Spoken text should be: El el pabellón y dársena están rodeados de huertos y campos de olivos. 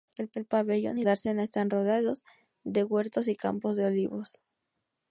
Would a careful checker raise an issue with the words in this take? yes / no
no